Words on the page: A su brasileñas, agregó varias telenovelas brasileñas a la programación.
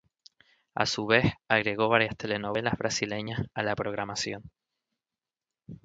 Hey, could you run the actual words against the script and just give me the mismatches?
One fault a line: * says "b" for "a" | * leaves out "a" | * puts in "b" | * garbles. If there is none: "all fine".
* says "vez" for "brasileñas"